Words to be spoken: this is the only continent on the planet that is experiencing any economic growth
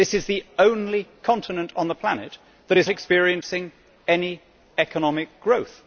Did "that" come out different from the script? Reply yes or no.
no